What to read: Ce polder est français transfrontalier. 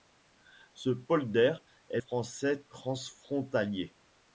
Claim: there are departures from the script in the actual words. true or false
false